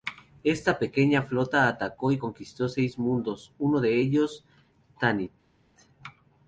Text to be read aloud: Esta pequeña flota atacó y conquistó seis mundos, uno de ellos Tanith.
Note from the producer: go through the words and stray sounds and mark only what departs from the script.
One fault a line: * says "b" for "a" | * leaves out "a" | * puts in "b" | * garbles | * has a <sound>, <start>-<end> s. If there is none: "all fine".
all fine